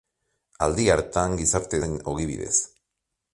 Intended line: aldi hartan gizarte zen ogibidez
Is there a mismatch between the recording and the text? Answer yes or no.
no